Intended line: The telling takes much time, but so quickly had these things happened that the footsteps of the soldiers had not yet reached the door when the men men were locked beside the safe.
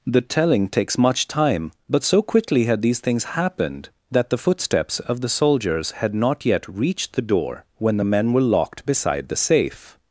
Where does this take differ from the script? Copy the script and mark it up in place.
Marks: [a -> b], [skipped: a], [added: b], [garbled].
The telling takes much time, but so quickly had these things happened that the footsteps of the soldiers had not yet reached the door when the men [skipped: men] were locked beside the safe.